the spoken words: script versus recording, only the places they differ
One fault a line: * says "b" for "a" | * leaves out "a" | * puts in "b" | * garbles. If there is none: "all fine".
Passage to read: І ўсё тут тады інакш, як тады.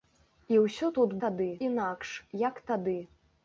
all fine